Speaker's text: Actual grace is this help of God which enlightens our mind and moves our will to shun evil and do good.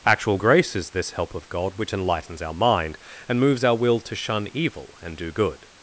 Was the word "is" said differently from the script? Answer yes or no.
no